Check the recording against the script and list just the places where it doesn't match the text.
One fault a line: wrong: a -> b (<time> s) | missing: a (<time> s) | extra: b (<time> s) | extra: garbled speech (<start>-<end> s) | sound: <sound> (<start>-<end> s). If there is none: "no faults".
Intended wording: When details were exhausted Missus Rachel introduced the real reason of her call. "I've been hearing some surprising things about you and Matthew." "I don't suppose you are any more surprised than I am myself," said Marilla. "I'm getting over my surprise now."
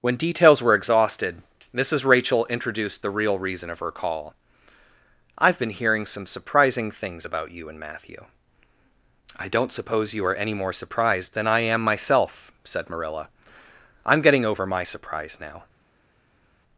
no faults